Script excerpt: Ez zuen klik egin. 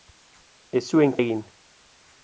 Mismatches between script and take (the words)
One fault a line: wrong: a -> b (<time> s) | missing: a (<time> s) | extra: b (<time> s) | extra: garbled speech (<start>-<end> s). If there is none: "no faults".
missing: klik (1.1 s)